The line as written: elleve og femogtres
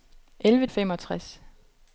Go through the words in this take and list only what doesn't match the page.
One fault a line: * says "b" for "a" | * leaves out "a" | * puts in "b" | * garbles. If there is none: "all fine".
all fine